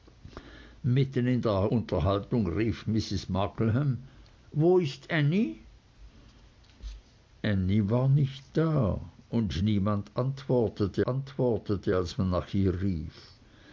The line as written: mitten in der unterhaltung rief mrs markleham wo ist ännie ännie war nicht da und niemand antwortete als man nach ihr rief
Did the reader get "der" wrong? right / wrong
right